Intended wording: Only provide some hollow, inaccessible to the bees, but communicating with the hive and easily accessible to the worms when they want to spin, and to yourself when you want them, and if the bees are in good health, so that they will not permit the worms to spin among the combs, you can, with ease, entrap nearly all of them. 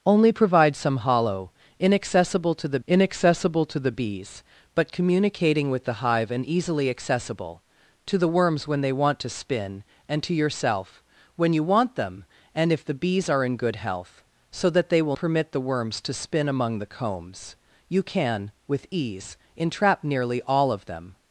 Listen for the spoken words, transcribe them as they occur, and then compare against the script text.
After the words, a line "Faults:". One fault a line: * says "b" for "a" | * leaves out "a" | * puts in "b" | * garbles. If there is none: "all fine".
Only provide some hollow, inaccessible to the inaccessible to the bees, but communicating with the hive and easily accessible to the worms when they want to spin, and to yourself when you want them, and if the bees are in good health, so that they will permit the worms to spin among the combs, you can, with ease, entrap nearly all of them.
Faults:
* puts in "inaccessible to the"
* leaves out "not"